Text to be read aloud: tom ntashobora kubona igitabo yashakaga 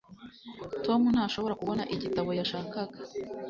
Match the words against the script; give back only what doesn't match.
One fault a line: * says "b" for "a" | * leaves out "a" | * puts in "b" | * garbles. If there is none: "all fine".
all fine